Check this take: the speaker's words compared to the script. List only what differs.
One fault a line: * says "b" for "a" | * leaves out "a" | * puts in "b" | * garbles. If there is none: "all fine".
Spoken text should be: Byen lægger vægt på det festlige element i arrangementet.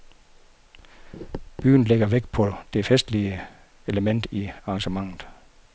all fine